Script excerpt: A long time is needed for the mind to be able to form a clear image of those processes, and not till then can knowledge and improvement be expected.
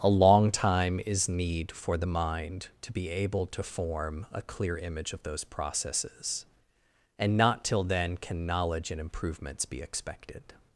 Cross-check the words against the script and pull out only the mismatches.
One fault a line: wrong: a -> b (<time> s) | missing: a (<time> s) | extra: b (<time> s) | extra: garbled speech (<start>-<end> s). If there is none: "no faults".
wrong: needed -> need (1.3 s)
wrong: improvement -> improvements (9.0 s)